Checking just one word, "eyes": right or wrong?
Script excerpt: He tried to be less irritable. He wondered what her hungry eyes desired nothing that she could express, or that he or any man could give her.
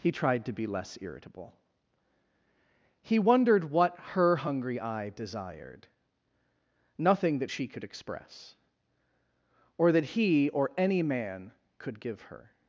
wrong